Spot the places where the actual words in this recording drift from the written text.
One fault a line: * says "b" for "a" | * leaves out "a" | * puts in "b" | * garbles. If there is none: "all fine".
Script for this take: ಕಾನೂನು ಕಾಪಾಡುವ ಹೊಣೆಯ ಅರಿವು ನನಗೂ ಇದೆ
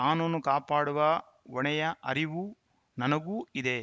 all fine